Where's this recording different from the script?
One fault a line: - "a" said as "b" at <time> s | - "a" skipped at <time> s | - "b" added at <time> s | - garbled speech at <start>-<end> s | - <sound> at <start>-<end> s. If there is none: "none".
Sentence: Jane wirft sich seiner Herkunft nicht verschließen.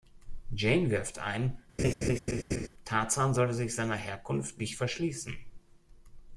- "ein Tarzan solle" added at 1.2 s
- laugh at 1.8-2.7 s